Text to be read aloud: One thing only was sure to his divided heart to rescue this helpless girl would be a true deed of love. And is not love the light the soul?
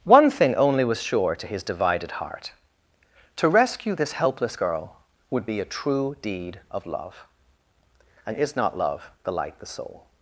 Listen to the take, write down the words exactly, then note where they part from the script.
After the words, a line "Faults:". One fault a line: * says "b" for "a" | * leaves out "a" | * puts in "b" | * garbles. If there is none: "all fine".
One thing only was sure to his divided heart to rescue this helpless girl would be a true deed of love. And is not love the light the soul?
Faults:
all fine